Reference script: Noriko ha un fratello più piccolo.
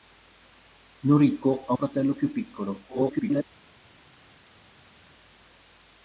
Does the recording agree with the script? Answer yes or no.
no